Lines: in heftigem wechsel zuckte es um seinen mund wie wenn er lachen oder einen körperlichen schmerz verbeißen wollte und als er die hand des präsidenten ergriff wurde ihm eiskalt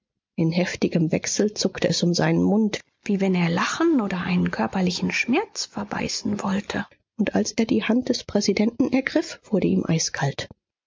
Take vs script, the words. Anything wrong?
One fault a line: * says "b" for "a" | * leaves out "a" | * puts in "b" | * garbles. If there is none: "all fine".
all fine